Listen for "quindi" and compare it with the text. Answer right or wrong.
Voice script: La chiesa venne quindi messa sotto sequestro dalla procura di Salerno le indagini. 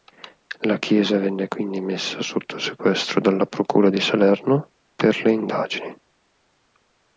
right